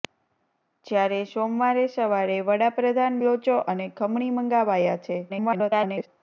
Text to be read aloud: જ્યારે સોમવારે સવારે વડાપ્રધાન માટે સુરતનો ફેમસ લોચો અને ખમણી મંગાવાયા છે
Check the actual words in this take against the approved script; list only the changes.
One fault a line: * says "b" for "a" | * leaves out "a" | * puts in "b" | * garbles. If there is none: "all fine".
* leaves out "માટે સુરતનો ફેમસ"
* garbles